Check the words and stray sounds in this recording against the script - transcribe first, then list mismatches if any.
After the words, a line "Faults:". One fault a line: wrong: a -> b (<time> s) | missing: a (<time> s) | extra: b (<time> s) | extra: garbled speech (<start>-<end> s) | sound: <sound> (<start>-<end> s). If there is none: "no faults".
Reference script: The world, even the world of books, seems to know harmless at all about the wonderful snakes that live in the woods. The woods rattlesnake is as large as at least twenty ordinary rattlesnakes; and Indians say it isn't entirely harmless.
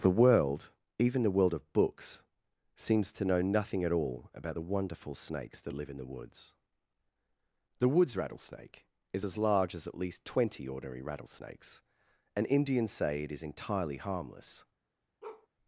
The world, even the world of books, seems to know nothing at all about the wonderful snakes that live in the woods. The woods rattlesnake is as large as at least twenty ordinary rattlesnakes; and Indians say it is entirely harmless.
Faults:
wrong: harmless -> nothing (3.4 s)
wrong: isn't -> is (13.3 s)
sound: bark (15.2-15.5 s)